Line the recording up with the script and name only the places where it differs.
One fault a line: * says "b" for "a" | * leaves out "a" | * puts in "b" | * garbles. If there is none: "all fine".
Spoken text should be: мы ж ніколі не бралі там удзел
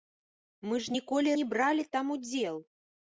all fine